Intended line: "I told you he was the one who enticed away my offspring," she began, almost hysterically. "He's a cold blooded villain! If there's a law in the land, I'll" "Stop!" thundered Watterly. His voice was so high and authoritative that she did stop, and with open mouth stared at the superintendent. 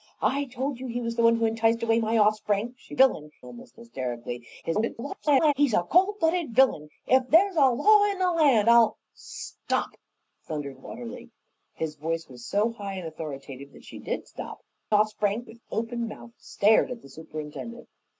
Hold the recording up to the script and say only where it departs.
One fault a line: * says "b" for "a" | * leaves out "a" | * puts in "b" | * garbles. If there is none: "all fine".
* says "villain" for "began"
* garbles
* says "offspring" for "and"